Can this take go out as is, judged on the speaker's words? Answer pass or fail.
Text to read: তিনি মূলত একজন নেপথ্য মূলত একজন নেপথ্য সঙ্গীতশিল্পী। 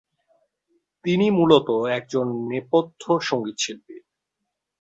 fail